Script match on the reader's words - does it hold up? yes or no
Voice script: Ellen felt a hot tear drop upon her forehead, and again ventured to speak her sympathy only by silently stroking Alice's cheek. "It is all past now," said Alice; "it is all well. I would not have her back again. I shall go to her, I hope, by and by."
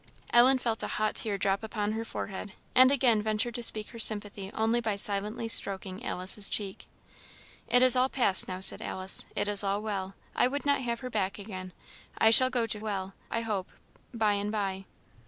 no